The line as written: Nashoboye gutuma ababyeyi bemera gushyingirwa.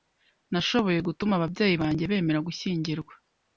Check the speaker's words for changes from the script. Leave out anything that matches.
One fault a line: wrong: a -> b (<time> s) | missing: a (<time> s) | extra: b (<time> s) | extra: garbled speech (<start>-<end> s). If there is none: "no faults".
extra: banjye (1.8 s)